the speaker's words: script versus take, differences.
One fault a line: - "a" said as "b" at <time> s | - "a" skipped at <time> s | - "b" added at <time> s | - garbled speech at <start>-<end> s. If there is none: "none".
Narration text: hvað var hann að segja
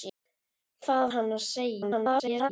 - "var" skipped at 1.1 s
- garbled speech at 1.8-2.5 s